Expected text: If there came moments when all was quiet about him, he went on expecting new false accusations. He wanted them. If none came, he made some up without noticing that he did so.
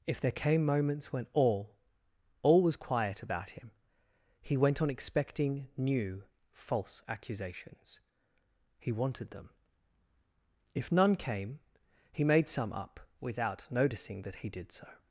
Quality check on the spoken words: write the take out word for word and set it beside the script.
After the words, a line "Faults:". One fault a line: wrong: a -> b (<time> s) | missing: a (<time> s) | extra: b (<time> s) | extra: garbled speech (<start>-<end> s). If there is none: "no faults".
If there came moments when all all was quiet about him, he went on expecting new false accusations. He wanted them. If none came, he made some up without noticing that he did so.
Faults:
extra: all (2.4 s)